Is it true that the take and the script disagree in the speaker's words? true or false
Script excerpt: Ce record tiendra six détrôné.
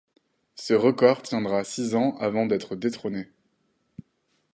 true